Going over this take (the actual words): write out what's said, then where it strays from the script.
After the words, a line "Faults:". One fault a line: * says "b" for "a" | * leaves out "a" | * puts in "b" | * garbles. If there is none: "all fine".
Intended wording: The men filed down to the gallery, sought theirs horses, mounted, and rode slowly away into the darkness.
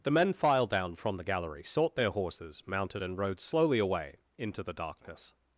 The men filed down from the gallery, sought their horses, mounted, and rode slowly away into the darkness.
Faults:
* says "from" for "to"
* says "their" for "theirs"